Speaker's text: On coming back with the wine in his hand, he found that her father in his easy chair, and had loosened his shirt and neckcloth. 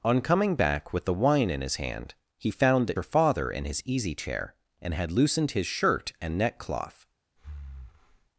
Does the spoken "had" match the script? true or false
true